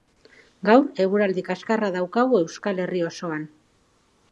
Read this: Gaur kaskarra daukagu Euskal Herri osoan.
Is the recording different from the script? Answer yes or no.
yes